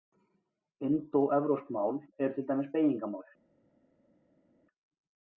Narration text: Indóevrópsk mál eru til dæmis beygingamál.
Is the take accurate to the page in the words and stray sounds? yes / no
yes